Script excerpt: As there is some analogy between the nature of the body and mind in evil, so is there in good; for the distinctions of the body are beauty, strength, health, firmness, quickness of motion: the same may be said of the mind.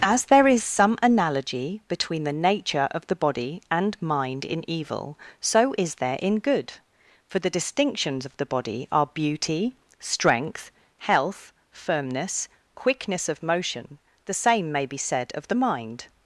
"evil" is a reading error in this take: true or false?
false